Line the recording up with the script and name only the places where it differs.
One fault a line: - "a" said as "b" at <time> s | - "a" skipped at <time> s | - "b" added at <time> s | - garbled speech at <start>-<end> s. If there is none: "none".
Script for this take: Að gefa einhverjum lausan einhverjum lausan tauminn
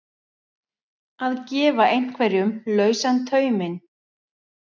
- "einhverjum lausan" skipped at 3.2 s